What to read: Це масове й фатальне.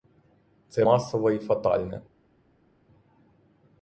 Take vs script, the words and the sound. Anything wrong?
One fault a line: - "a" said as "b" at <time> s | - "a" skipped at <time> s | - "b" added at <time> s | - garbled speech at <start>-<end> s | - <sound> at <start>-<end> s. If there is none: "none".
none